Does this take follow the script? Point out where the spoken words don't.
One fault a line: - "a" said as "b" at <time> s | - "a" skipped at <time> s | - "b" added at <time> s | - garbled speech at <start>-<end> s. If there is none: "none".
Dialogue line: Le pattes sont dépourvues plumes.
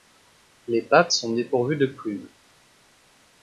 - "Le" said as "Les" at 0.7 s
- "de" added at 1.7 s